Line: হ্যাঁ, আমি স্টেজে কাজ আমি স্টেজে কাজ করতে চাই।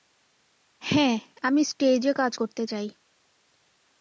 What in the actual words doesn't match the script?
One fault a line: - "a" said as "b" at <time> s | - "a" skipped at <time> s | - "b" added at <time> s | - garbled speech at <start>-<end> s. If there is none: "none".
- "আমি স্টেজে কাজ" skipped at 2.3 s